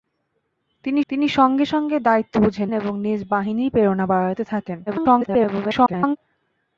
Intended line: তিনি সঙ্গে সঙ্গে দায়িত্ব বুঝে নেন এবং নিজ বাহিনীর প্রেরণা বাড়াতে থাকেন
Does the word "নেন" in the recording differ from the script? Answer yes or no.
yes